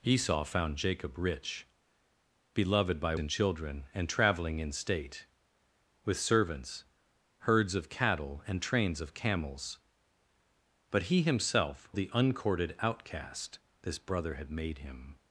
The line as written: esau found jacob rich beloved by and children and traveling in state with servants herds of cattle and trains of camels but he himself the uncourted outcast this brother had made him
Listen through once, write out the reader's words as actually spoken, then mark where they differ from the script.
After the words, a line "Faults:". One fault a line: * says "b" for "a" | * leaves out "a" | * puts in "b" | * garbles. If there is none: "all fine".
esau found jacob rich beloved by and children and traveling in state with servants herds of cattle and trains of camels but he himself the uncourted outcast this brother had made him
Faults:
all fine